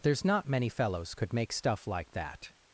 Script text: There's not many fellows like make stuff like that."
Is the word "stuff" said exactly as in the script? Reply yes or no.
yes